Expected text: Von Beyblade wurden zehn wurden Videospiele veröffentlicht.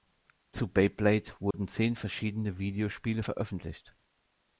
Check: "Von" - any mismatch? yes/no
yes